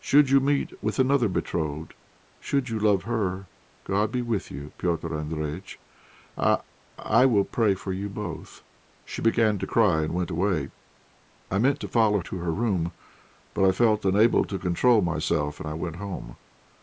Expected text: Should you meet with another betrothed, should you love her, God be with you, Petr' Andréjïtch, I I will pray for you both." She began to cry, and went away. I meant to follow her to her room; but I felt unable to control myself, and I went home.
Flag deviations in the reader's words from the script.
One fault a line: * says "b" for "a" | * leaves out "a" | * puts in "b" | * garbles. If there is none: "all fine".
* leaves out "her"